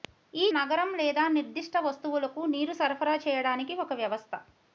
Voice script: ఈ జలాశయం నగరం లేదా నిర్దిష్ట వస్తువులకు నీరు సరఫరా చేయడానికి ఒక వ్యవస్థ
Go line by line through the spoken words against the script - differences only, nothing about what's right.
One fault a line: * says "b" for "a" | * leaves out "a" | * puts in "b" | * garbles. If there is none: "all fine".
* leaves out "జలాశయం"